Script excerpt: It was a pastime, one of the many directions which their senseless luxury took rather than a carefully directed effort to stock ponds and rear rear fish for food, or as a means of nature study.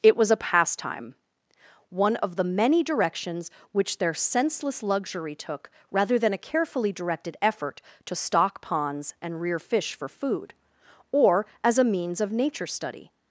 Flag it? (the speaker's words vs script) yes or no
yes